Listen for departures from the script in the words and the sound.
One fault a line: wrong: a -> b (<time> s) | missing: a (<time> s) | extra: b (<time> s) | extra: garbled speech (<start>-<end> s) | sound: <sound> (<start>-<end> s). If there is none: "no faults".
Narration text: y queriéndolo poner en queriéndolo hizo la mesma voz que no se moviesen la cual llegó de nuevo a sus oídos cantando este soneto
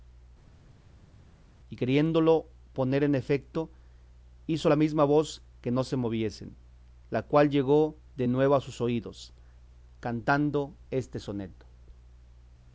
wrong: queriéndolo -> efeto (3.2 s)